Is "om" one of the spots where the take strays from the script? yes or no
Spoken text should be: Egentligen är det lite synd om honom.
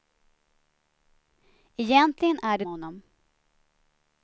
yes